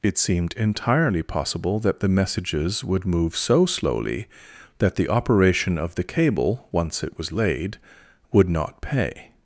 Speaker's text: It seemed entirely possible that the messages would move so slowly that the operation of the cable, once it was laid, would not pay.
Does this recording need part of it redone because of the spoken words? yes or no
no